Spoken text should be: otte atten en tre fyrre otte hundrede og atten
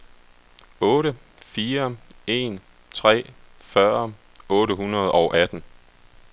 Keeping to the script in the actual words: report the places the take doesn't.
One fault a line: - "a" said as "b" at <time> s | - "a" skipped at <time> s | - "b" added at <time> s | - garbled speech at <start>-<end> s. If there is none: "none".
- "atten" said as "fire" at 1.4 s